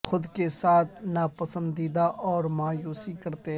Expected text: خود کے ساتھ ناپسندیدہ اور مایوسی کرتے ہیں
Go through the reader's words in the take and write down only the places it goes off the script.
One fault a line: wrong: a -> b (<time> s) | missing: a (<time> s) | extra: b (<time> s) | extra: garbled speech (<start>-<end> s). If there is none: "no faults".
no faults